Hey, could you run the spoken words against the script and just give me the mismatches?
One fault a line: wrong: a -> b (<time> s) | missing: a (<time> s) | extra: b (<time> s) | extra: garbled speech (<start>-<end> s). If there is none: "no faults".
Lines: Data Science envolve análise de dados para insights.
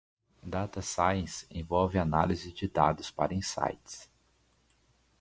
no faults